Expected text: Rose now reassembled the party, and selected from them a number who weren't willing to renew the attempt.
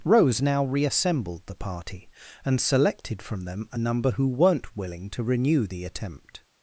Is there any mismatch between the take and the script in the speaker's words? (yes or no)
no